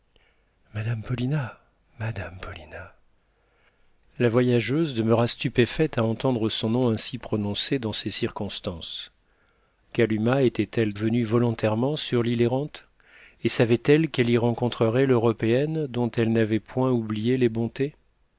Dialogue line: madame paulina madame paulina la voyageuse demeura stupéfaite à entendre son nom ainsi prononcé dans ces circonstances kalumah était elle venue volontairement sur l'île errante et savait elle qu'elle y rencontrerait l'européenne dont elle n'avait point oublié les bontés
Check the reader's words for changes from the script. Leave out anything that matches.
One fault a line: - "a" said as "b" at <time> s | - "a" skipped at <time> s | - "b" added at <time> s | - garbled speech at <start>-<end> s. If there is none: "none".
none